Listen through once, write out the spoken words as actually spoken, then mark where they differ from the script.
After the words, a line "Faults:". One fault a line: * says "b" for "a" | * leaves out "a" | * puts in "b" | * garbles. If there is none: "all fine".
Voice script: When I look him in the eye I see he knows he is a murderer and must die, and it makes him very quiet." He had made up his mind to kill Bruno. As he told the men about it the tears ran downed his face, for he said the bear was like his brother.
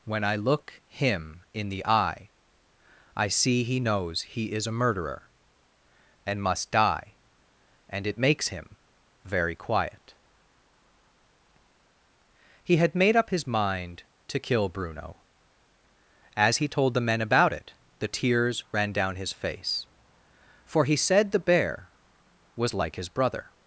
When I look him in the eye I see he knows he is a murderer and must die, and it makes him very quiet." He had made up his mind to kill Bruno. As he told the men about it the tears ran down his face, for he said the bear was like his brother.
Faults:
* says "down" for "downed"